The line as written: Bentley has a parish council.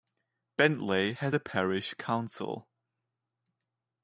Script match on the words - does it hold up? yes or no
yes